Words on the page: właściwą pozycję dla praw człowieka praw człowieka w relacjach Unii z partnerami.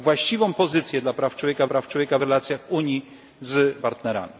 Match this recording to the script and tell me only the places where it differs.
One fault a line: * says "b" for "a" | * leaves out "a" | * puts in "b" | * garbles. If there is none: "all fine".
all fine